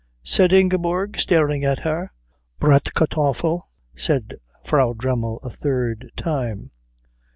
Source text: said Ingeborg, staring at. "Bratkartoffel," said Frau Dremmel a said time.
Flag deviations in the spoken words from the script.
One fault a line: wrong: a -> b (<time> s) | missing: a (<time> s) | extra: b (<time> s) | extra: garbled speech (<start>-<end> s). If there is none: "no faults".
extra: her (1.8 s)
wrong: said -> third (5.5 s)